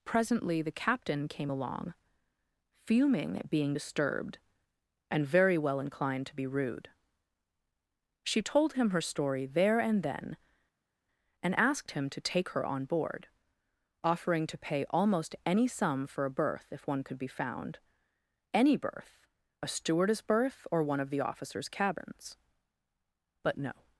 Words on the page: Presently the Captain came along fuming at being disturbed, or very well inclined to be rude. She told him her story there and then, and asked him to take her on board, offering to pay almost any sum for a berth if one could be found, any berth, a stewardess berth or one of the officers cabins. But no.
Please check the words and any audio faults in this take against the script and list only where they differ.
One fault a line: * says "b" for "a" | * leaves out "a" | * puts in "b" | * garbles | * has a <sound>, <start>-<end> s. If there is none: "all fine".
* says "and" for "or"